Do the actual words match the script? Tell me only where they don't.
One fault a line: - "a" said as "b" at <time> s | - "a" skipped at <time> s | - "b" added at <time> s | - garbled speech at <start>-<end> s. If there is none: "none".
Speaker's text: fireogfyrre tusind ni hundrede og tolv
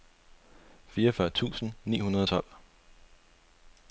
none